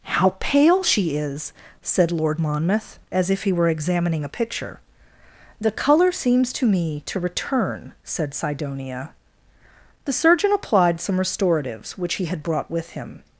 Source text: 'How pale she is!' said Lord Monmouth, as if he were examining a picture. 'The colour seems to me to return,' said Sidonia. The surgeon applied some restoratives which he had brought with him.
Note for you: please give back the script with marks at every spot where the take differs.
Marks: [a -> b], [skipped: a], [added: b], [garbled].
'How pale she is!' said Lord Monmouth, as if he were examining a picture. 'The colour seems to me to return,' said Sidonia. The surgeon applied some restoratives which he had brought with him.